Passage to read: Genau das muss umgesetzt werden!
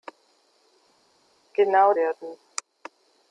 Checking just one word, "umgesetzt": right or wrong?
wrong